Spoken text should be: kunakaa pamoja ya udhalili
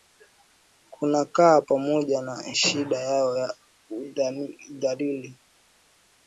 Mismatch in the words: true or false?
true